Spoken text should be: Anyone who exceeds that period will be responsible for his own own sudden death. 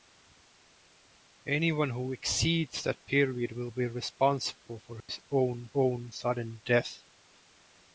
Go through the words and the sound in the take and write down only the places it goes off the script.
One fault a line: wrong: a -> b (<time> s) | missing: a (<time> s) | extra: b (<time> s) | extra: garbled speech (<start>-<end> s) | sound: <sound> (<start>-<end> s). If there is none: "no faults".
sound: dropout (5.0-5.1 s)